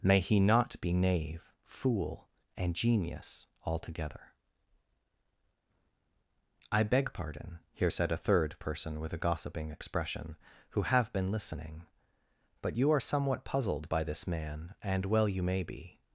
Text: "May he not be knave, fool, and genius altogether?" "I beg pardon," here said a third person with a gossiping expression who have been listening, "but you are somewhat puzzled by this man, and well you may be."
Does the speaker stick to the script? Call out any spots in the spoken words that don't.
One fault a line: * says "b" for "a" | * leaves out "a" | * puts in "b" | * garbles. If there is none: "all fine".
all fine